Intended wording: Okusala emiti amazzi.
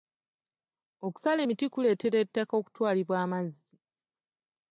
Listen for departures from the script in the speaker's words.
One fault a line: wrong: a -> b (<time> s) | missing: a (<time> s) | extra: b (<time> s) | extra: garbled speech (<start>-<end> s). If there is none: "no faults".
extra: kuleetera ettaka okutwalibwa (1.7 s)